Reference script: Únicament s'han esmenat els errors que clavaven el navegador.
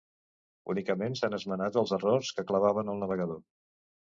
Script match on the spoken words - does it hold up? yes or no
yes